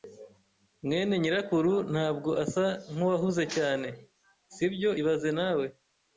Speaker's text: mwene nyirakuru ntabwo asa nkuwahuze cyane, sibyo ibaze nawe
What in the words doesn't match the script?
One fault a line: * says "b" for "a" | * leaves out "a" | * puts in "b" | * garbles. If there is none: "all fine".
all fine